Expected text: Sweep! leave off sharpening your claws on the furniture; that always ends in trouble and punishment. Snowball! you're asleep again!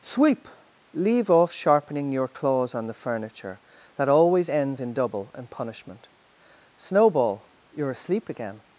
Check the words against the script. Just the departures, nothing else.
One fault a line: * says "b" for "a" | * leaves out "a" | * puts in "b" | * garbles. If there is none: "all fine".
* says "double" for "trouble"